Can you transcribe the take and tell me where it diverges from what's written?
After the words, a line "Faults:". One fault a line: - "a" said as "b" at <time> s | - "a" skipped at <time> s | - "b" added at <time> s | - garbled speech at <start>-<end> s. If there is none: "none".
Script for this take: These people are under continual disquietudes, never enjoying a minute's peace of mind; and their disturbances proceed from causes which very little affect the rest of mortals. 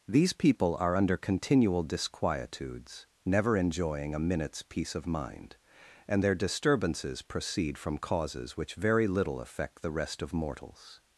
These people are under continual disquietudes, never enjoying a minute's peace of mind; and their disturbances proceed from causes which very little affect the rest of mortals.
Faults:
none